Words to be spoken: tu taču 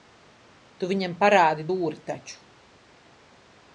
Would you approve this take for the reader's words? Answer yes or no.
no